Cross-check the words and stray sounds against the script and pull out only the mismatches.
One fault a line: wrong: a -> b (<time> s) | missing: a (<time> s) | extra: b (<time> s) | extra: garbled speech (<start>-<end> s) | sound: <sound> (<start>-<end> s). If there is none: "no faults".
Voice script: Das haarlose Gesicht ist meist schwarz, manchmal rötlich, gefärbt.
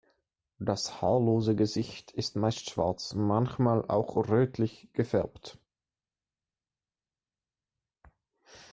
extra: auch (3.8 s)